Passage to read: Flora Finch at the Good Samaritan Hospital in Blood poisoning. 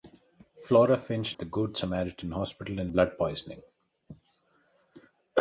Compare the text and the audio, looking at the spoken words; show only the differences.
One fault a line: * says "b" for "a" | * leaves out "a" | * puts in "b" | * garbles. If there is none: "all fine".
all fine